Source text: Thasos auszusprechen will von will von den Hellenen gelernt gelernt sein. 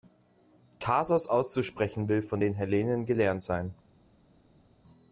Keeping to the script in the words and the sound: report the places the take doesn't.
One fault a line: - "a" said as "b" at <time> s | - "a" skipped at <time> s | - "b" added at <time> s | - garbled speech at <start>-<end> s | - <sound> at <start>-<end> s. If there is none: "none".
- "will von" skipped at 2.4 s
- "gelernt" skipped at 3.4 s